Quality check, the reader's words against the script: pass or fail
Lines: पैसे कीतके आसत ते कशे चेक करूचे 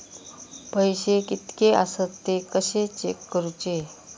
pass